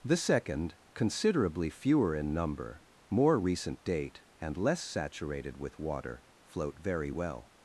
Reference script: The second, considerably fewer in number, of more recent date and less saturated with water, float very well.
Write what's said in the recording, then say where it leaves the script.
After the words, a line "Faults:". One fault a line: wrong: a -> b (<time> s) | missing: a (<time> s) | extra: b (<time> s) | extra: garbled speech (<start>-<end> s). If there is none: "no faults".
The second, considerably fewer in number, more recent date and less saturated with water, float very well.
Faults:
missing: of (2.8 s)